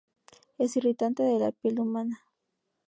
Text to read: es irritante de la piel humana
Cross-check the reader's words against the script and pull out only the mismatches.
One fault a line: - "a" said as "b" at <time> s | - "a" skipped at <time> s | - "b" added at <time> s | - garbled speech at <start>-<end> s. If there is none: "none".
none